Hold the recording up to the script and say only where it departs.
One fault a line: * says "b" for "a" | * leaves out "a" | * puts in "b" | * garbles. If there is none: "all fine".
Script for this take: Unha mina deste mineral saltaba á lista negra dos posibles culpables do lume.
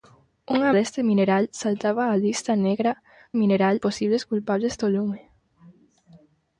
* leaves out "mina"
* says "mineral" for "dos"